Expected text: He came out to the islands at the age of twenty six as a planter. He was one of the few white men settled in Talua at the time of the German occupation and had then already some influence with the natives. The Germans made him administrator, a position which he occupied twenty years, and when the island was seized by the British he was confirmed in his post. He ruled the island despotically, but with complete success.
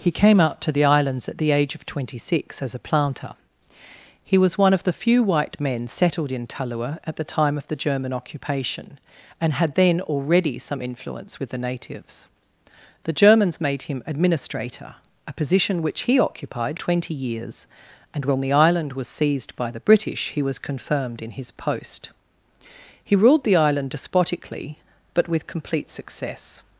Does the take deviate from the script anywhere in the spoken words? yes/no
no